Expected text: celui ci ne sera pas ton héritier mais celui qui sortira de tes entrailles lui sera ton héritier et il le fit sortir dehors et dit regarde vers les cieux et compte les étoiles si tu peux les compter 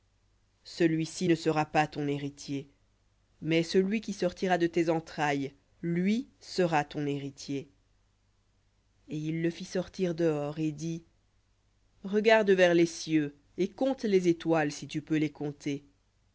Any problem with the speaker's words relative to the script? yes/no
no